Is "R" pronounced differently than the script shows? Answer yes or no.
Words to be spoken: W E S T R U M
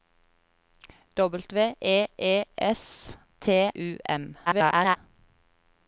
yes